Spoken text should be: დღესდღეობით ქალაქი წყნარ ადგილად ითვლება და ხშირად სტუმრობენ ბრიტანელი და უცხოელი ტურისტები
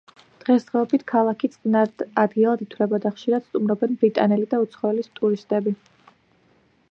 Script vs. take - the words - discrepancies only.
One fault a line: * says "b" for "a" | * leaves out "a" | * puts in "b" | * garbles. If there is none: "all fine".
all fine